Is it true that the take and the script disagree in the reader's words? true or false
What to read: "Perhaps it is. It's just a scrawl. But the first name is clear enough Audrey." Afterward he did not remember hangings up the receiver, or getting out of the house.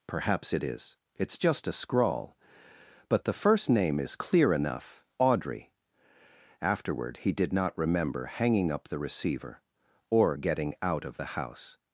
true